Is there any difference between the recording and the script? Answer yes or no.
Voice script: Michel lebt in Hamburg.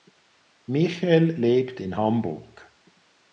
no